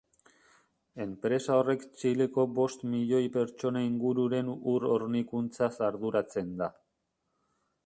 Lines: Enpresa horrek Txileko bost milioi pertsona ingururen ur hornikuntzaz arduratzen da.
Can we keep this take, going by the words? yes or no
yes